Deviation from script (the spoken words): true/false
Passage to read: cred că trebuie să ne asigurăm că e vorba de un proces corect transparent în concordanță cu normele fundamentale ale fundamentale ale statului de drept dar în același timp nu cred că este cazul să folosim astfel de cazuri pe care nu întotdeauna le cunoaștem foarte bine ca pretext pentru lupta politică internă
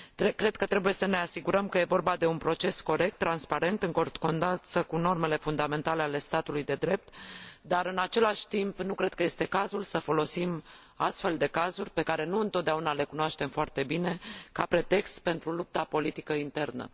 true